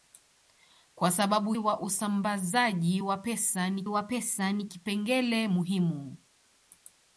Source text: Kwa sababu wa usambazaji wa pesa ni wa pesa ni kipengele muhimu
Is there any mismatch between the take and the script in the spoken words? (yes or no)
no